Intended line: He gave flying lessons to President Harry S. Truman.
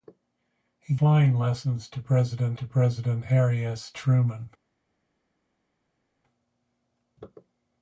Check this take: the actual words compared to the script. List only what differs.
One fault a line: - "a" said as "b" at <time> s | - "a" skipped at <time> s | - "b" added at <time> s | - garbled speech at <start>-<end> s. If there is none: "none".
- "gave" skipped at 0.9 s
- "to President" added at 2.5 s